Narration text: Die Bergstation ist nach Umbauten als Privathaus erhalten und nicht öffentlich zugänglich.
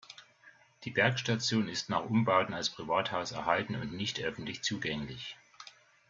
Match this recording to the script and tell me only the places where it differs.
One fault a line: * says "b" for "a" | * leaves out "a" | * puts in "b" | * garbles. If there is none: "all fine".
all fine